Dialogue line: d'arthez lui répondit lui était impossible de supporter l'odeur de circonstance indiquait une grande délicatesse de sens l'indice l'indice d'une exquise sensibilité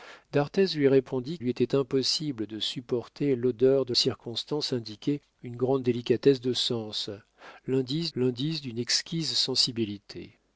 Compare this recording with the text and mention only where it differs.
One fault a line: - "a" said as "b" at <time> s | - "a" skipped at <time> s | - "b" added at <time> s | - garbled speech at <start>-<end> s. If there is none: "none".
none